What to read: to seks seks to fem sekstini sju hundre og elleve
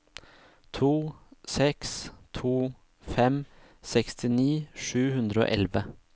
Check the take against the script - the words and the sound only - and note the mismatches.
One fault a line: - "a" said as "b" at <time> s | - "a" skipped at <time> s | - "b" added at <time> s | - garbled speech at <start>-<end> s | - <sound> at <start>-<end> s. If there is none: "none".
- "seks" skipped at 2.1 s